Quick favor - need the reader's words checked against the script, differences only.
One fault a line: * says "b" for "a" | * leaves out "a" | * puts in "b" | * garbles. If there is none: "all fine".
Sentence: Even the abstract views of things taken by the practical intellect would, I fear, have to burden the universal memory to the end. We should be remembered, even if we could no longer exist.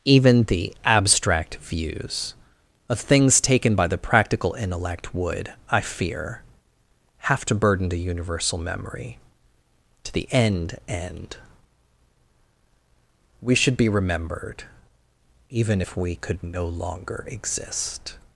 * puts in "end"